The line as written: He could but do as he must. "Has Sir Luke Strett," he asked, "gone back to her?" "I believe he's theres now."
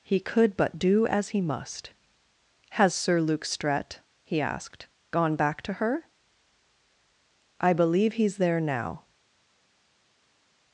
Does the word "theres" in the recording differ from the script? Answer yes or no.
yes